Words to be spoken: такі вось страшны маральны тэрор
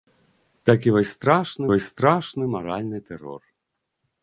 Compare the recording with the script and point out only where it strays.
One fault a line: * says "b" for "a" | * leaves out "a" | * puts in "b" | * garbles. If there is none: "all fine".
* puts in "вось страшны"